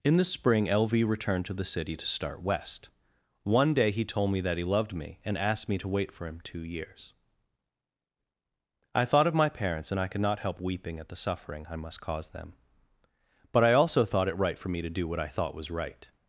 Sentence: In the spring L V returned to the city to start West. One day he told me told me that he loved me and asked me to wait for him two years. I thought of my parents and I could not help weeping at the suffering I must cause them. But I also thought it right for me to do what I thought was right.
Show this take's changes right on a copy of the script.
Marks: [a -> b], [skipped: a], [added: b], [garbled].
In the spring L V returned to the city to start West. One day he told me [skipped: told me] that he loved me and asked me to wait for him two years. I thought of my parents and I could not help weeping at the suffering I must cause them. But I also thought it right for me to do what I thought was right.